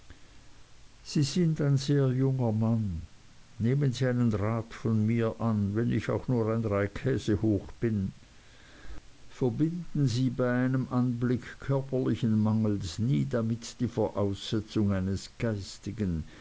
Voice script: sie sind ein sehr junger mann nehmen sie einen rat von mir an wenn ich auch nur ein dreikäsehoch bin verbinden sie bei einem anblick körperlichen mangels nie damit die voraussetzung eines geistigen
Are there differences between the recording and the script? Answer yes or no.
no